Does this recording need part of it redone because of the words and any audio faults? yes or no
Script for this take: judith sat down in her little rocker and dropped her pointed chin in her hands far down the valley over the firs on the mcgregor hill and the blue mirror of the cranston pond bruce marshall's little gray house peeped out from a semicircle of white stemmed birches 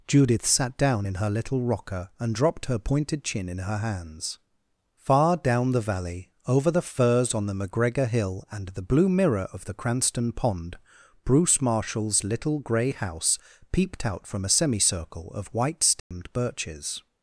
yes